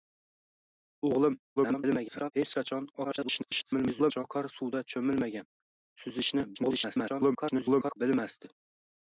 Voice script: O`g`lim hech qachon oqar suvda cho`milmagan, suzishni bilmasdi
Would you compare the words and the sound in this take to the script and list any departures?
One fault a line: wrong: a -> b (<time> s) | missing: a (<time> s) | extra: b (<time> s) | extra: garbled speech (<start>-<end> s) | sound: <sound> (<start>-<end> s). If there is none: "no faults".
extra: garbled speech (1.6-2.3 s)
extra: garbled speech (3.0-4.2 s)
extra: garbled speech (6.5-8.0 s)